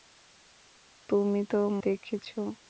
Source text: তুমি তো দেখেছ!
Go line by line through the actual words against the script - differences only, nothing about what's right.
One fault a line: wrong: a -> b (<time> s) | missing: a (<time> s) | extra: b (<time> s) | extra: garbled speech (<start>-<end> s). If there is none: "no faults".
no faults